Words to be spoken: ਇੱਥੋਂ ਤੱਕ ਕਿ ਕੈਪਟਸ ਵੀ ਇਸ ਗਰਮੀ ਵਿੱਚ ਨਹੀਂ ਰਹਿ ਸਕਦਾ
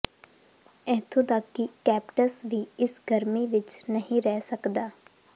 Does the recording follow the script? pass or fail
pass